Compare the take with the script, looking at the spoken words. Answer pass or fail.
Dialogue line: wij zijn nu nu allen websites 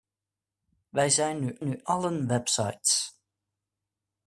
pass